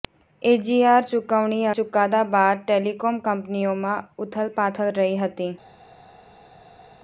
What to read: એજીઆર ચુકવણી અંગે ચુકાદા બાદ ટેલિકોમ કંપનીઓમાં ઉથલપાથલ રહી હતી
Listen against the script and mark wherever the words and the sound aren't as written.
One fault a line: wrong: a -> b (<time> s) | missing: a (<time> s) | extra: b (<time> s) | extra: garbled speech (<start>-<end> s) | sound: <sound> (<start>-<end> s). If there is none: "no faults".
missing: અંગે (1.7 s)